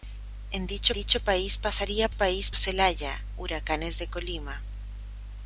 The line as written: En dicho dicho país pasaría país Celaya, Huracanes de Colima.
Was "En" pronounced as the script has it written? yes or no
yes